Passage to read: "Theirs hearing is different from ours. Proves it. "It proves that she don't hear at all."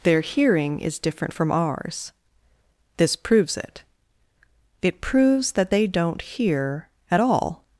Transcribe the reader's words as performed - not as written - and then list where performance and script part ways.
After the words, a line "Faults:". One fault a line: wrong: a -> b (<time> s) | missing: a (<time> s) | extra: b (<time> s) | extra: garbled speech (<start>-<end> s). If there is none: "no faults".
"Their hearing is different from ours. This proves it. "It proves that they don't hear at all."
Faults:
wrong: Theirs -> Their (0.0 s)
extra: This (3.0 s)
wrong: she -> they (5.7 s)